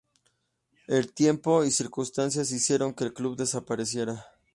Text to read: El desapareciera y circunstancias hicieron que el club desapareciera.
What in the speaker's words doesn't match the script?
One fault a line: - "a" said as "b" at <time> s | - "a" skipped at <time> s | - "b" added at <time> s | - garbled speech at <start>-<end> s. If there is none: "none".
- "desapareciera" said as "tiempo" at 1.1 s